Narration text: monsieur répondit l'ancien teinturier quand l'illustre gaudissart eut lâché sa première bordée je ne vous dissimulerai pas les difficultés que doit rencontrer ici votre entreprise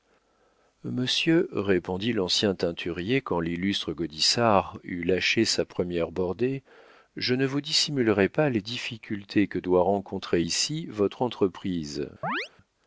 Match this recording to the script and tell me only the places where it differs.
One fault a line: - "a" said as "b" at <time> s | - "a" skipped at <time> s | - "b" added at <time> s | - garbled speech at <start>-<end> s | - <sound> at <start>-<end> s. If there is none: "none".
- chirp at 12.2-12.5 s